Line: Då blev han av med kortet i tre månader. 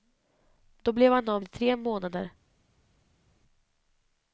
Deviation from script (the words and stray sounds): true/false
true